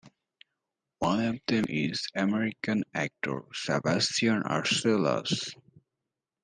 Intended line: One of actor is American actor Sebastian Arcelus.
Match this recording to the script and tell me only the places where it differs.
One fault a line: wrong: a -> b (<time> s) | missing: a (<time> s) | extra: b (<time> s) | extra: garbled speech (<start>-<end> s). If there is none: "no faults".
wrong: actor -> them (1.5 s)